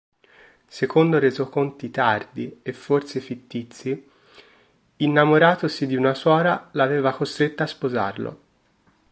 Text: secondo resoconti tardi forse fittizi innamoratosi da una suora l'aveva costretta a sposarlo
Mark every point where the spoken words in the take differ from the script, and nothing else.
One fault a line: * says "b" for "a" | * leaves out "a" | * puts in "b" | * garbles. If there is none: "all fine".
* puts in "e"
* says "di" for "da"